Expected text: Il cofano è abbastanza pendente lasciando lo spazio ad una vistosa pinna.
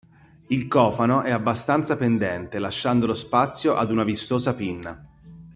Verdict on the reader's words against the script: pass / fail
pass